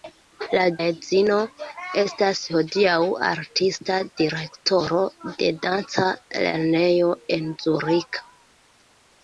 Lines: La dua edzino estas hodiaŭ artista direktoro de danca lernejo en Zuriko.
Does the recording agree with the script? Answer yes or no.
no